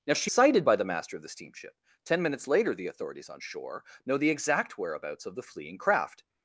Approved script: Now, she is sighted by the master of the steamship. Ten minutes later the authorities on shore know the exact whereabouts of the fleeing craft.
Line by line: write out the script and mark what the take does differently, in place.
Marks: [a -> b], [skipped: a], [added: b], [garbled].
Now, she [skipped: is] sighted by the master of the steamship. Ten minutes later the authorities on shore know the exact whereabouts of the fleeing craft.